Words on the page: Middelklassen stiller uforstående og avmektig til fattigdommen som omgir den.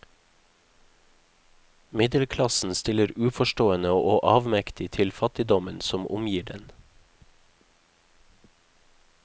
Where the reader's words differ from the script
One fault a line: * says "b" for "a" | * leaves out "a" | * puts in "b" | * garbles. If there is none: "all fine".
all fine